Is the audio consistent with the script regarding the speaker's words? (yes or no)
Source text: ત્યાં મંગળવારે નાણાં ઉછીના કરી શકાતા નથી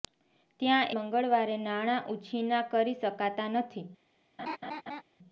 yes